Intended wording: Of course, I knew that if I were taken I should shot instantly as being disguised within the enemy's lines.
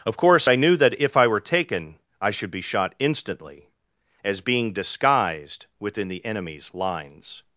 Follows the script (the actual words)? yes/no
no